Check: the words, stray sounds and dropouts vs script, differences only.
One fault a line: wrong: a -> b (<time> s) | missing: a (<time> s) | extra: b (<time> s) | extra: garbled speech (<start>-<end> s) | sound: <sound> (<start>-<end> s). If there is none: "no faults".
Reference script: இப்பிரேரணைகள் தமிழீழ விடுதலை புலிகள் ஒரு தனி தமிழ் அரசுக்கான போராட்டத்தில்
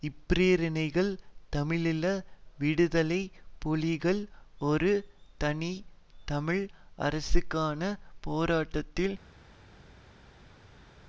no faults